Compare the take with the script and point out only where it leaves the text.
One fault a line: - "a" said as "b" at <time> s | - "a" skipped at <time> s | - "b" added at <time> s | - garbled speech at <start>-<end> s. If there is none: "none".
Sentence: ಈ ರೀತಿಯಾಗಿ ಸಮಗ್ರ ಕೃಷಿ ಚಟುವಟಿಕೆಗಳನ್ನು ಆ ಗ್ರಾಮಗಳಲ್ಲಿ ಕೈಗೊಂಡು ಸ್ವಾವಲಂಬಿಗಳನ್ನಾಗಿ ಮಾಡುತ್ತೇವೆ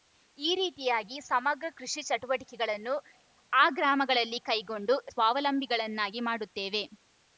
none